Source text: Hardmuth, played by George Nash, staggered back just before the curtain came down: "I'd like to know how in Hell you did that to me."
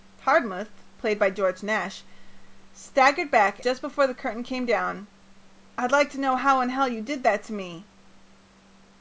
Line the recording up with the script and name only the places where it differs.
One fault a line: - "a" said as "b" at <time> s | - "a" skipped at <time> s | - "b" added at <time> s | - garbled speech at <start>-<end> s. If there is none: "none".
none